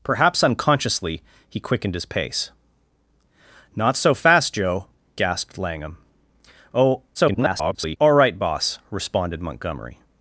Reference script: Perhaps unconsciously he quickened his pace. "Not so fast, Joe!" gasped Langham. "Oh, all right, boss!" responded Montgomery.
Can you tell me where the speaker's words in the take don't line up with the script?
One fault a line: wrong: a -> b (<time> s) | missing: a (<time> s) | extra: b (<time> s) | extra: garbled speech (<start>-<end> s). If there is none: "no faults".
extra: garbled speech (7.1-8.0 s)